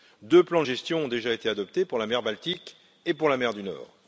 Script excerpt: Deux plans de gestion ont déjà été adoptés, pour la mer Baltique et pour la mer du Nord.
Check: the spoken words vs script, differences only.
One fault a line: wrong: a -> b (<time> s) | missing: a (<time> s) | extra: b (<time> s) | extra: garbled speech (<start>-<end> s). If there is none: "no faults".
no faults